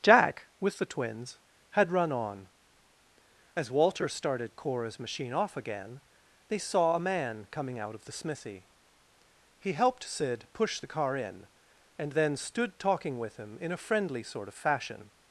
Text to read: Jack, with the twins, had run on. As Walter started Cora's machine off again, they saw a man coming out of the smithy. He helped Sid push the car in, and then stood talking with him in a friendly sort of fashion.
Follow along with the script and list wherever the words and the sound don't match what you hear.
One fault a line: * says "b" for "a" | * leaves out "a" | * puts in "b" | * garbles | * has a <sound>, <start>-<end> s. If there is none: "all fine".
all fine